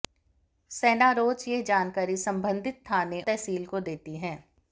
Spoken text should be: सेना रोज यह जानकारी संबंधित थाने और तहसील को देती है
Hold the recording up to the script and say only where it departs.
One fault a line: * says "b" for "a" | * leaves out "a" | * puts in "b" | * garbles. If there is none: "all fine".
* leaves out "और"